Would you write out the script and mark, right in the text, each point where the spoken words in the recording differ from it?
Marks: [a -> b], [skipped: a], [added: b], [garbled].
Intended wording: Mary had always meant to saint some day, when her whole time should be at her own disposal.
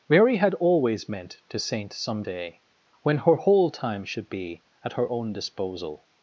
Mary had always meant to saint some day, when her whole time should be at her own disposal.